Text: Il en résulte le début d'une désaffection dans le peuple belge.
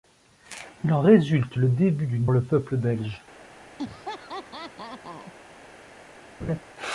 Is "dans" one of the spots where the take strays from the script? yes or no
yes